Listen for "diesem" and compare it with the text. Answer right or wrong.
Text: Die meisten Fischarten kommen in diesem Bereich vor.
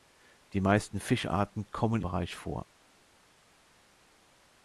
wrong